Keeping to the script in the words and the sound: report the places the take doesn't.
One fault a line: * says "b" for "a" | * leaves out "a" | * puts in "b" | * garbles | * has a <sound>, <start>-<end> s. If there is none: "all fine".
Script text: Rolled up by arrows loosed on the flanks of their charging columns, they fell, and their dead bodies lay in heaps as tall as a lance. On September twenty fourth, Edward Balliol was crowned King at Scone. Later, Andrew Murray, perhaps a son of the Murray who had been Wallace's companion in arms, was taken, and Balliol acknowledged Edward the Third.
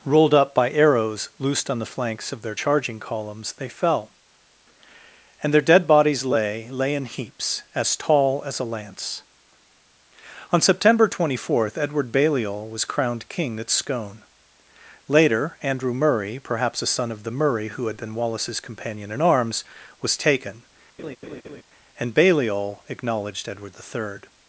* puts in "lay"
* has a laugh, 21.0-21.6 s